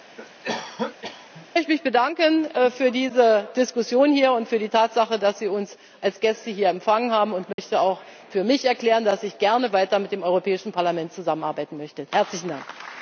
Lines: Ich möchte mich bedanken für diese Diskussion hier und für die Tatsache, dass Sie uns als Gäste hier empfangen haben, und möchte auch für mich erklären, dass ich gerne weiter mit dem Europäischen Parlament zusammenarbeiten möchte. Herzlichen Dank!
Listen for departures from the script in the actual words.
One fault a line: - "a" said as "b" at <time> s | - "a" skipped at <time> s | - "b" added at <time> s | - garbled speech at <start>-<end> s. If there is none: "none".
none